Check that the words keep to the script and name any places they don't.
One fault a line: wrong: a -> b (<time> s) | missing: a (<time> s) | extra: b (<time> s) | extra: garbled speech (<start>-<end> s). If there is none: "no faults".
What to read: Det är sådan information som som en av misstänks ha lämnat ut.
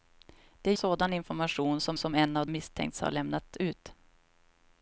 no faults